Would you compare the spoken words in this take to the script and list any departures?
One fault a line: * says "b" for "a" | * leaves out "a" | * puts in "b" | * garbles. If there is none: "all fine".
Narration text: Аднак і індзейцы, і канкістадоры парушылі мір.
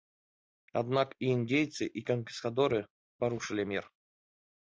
all fine